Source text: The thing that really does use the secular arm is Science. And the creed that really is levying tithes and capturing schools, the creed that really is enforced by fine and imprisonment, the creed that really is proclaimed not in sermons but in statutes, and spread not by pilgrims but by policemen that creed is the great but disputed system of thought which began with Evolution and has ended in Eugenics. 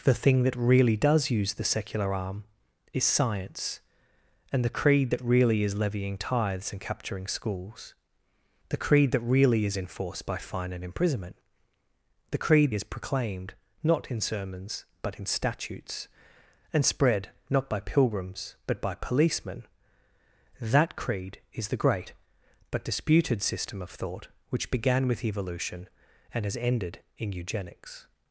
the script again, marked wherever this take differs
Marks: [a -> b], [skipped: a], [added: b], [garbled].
The thing that really does use the secular arm is Science. And the creed that really is levying tithes and capturing schools, the creed that really is enforced by fine and imprisonment, the creed [skipped: that really] is proclaimed not in sermons but in statutes, and spread not by pilgrims but by policemen that creed is the great but disputed system of thought which began with Evolution and has ended in Eugenics.